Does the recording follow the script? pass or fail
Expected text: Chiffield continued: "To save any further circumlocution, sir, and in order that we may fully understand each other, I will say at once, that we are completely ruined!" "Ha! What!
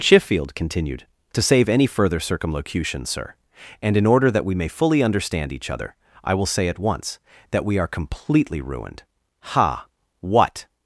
pass